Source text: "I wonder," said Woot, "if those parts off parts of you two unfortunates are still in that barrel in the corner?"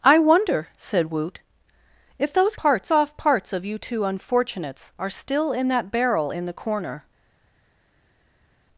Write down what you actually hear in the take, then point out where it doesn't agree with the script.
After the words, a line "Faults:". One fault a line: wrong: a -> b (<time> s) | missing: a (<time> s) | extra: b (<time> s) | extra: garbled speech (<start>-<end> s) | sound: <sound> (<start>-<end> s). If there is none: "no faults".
"I wonder," said Woot, "if those parts off parts of you two unfortunates are still in that barrel in the corner?"
Faults:
no faults